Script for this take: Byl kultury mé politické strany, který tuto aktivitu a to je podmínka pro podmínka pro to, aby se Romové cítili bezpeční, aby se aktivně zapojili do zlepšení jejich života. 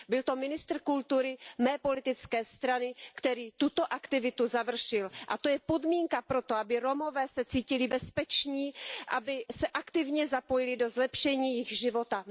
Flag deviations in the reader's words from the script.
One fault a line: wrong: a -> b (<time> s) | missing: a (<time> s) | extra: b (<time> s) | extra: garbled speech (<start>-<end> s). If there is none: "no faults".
extra: to ministr (0.2 s)
extra: završil (4.5 s)
missing: podmínka pro (6.4 s)